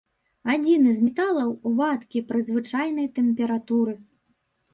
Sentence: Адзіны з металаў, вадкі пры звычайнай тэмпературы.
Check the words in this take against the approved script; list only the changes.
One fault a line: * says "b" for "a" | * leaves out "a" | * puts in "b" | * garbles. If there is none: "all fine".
all fine